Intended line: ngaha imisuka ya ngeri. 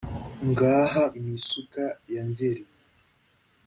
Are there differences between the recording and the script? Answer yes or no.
no